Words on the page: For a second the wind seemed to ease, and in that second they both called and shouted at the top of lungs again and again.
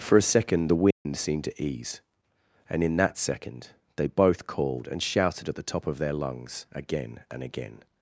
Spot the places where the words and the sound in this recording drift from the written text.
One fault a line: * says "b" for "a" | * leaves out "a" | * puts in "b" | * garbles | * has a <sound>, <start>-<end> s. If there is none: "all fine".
* has a dropout, 0.9-1.1 s
* puts in "their"